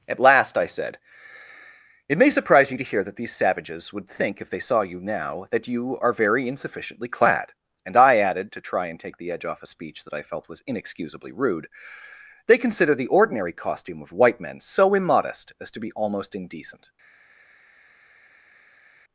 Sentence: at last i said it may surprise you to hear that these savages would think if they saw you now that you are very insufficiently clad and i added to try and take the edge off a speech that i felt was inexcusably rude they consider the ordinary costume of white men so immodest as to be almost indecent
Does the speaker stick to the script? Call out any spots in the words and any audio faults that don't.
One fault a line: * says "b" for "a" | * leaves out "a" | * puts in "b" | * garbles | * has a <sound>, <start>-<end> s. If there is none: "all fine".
all fine